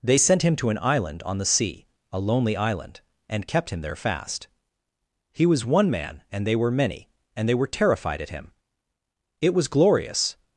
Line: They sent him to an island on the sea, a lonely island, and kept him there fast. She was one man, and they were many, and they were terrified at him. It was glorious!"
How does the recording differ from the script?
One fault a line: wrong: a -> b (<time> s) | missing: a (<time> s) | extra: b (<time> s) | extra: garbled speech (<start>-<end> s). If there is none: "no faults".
wrong: She -> He (5.3 s)